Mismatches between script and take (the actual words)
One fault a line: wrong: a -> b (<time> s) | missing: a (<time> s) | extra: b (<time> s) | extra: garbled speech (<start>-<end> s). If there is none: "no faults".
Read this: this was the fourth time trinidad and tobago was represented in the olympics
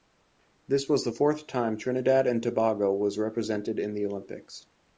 no faults